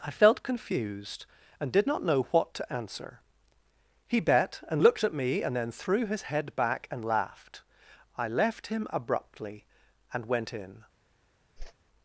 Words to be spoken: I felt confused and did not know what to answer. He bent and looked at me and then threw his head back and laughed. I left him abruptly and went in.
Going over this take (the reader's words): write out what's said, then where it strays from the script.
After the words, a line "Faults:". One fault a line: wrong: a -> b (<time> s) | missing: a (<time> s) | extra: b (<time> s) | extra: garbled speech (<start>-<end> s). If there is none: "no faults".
I felt confused and did not know what to answer. He bet and looked at me and then threw his head back and laughed. I left him abruptly and went in.
Faults:
wrong: bent -> bet (4.2 s)